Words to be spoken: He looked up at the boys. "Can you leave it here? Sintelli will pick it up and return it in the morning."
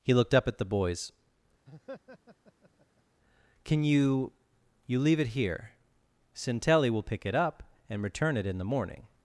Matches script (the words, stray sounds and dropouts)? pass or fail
fail